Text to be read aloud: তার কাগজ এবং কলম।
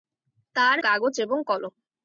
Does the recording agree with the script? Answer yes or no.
yes